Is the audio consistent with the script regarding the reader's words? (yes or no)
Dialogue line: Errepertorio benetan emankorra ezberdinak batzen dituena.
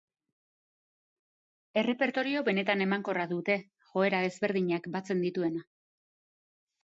no